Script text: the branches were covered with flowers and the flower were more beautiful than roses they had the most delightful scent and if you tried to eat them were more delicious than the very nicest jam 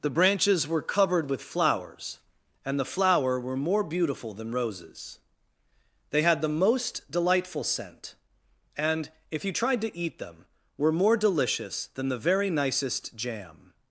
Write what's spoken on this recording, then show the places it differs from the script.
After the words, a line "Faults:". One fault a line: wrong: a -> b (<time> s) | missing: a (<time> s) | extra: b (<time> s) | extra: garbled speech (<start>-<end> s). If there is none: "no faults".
the branches were covered with flowers and the flower were more beautiful than roses they had the most delightful scent and if you tried to eat them were more delicious than the very nicest jam
Faults:
no faults